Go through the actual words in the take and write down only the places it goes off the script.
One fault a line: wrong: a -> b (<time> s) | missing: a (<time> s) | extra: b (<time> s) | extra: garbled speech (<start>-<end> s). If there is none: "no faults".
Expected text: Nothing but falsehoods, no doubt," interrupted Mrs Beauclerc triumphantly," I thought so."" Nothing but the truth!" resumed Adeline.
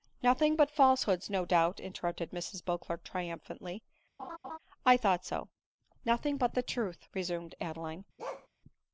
no faults